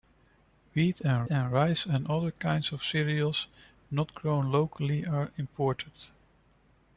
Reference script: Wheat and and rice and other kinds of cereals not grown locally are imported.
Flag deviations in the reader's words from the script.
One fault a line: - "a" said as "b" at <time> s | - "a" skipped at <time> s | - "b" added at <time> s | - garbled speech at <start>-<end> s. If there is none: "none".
none